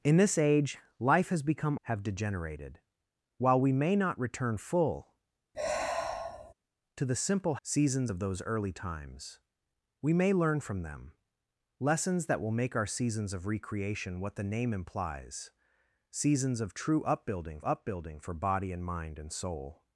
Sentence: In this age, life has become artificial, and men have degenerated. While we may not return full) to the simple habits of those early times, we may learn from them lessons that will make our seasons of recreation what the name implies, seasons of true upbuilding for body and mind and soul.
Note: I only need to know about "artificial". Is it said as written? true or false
false